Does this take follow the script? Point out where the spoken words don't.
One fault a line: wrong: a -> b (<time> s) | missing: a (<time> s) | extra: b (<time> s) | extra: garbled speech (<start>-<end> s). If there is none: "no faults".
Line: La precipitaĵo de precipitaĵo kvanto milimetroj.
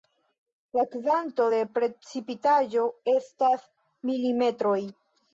wrong: precipitaĵo -> kvanto (0.9 s)
wrong: kvanto -> estas (3.1 s)